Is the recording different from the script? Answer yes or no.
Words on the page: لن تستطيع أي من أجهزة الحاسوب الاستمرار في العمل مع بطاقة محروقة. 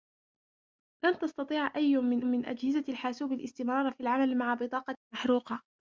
yes